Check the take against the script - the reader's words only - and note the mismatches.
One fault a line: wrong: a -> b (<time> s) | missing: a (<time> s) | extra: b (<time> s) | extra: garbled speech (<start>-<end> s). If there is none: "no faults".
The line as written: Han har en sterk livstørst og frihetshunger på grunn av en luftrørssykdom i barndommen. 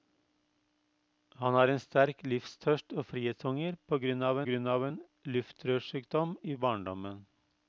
extra: grunn av (4.5 s)